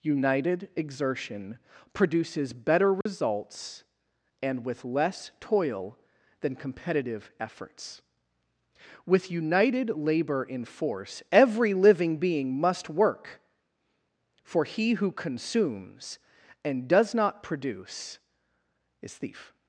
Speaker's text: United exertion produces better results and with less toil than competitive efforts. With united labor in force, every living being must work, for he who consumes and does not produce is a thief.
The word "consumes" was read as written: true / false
true